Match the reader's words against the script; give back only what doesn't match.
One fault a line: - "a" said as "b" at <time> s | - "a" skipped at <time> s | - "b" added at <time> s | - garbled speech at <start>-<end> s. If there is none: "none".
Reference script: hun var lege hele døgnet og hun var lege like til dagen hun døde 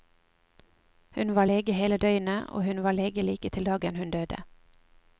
none